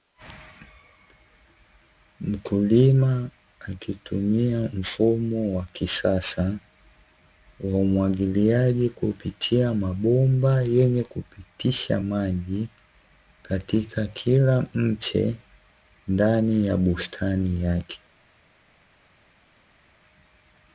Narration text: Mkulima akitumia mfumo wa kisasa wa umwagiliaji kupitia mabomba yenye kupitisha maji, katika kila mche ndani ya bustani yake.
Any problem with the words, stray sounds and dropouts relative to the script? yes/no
no